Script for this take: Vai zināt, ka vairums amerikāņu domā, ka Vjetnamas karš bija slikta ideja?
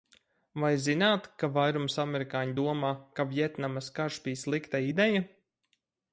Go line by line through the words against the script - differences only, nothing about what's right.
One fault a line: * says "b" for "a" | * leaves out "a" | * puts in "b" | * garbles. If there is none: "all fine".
all fine